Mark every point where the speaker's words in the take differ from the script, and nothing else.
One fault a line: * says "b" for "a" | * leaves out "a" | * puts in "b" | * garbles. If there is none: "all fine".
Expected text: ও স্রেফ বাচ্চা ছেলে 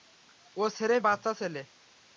all fine